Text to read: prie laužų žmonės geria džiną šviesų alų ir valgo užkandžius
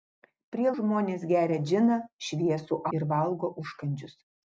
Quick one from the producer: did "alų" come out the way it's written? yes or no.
no